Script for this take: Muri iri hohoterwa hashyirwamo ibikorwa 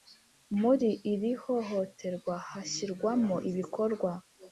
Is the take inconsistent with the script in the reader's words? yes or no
no